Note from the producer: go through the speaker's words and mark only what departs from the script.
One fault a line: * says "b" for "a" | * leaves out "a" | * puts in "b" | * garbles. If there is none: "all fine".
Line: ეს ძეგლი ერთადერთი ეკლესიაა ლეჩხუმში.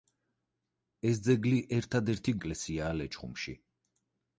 all fine